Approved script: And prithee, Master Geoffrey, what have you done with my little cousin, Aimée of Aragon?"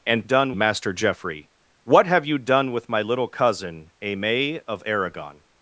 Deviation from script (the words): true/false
true